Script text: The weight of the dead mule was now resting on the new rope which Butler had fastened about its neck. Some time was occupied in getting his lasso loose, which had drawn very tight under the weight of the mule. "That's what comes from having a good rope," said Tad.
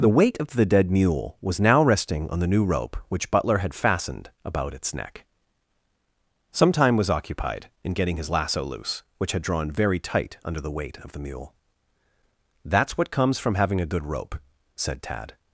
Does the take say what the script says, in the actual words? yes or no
yes